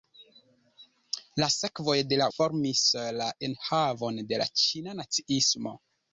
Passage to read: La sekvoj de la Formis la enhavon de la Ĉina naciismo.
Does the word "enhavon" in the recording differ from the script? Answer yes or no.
no